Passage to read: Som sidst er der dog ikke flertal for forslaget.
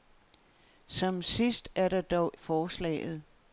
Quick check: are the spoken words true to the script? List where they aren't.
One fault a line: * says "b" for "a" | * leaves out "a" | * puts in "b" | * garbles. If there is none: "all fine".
* leaves out "ikke flertal for"